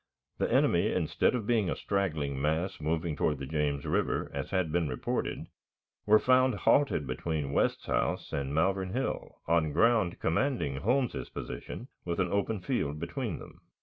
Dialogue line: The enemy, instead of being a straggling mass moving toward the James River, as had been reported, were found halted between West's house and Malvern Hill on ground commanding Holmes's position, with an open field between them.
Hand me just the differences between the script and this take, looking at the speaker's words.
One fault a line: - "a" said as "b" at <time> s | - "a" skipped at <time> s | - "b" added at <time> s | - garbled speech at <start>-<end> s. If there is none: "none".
none